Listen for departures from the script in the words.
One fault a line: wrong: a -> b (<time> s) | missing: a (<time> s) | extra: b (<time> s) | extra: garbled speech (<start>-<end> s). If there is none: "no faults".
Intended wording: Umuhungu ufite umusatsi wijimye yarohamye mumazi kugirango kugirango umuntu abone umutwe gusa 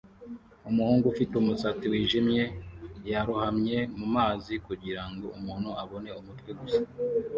missing: kugirango (5.3 s)